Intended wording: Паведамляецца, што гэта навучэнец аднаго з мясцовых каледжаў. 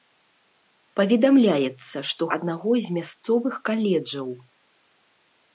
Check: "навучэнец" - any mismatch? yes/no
yes